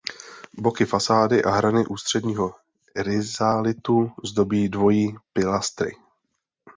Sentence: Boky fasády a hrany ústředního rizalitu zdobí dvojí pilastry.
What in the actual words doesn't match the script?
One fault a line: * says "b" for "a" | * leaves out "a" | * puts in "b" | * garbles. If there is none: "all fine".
all fine